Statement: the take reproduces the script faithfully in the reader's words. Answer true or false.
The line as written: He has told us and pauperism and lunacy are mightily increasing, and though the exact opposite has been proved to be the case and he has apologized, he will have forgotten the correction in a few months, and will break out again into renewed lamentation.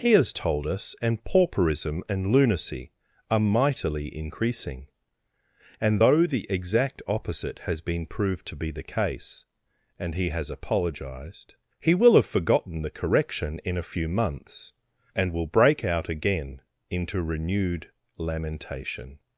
true